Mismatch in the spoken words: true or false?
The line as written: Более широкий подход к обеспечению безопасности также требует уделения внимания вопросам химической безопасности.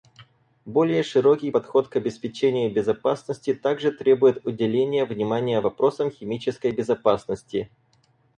false